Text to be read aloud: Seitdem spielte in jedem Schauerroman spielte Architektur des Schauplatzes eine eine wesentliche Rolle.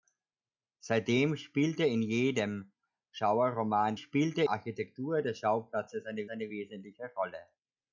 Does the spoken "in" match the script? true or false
true